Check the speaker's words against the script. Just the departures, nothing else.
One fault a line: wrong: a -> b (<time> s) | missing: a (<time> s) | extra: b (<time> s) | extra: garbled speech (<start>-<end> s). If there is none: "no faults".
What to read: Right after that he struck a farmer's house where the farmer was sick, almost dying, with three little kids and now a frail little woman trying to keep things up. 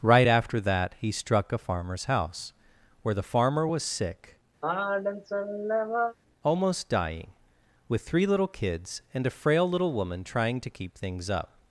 missing: now (9.3 s)